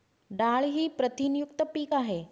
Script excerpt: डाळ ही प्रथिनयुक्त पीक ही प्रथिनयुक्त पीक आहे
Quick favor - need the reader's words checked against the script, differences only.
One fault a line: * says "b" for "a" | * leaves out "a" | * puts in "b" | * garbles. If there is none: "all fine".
* leaves out "ही प्रथिनयुक्त पीक"